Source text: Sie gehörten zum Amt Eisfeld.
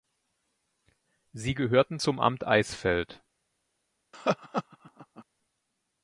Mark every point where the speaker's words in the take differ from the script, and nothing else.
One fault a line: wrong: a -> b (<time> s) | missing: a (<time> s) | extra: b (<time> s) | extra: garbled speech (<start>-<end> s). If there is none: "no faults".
no faults